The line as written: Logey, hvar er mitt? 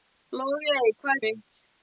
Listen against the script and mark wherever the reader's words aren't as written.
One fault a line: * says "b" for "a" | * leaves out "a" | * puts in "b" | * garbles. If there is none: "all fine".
all fine